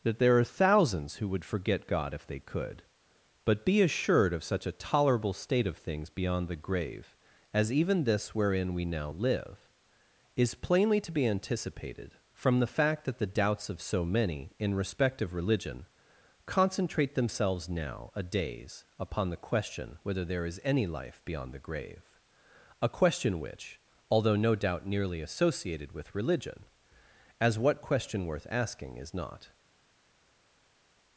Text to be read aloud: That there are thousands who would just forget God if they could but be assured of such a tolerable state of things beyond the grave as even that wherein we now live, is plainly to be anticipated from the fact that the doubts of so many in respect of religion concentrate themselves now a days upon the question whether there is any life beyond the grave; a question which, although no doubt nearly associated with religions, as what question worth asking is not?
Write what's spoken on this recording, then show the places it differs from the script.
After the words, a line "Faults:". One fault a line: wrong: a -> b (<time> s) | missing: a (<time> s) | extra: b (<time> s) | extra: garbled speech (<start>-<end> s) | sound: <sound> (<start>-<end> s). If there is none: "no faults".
That there are thousands who would forget God if they could but be assured of such a tolerable state of things beyond the grave as even this wherein we now live, is plainly to be anticipated from the fact that the doubts of so many in respect of religion concentrate themselves now a days upon the question whether there is any life beyond the grave; a question which, although no doubt nearly associated with religion, as what question worth asking is not?
Faults:
missing: just (1.4 s)
wrong: that -> this (8.0 s)
wrong: religions -> religion (26.2 s)